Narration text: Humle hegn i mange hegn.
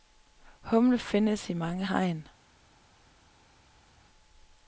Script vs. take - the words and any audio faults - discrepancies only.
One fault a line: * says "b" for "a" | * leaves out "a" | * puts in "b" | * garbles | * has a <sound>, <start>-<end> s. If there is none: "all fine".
* says "findes" for "hegn"